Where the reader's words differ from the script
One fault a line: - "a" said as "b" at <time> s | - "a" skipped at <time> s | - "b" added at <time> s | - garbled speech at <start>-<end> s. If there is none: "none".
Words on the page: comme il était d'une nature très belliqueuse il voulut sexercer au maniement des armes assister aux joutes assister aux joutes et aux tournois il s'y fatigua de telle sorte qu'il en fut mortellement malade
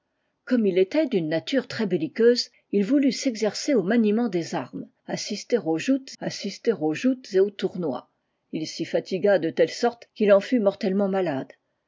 none